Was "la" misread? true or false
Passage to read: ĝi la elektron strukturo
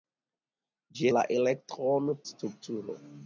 false